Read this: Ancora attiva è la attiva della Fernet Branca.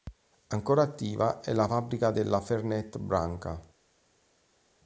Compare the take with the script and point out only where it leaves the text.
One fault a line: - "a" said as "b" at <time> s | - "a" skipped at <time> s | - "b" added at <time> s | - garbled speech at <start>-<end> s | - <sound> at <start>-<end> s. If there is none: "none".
- "attiva" said as "fabbrica" at 1.6 s